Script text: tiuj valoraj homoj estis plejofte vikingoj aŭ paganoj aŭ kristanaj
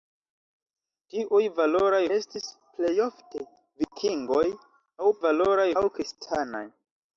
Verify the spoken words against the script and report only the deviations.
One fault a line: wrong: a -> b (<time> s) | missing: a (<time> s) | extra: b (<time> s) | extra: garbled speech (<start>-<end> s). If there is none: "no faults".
missing: homoj (2.0 s)
wrong: paganoj -> valoraj (5.2 s)